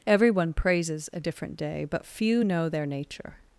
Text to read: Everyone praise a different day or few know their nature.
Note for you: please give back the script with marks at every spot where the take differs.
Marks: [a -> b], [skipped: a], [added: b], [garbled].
Everyone [praise -> praises] a different day [or -> but] few know their nature.